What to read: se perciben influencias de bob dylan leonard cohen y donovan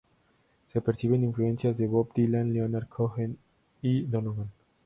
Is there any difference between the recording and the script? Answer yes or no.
no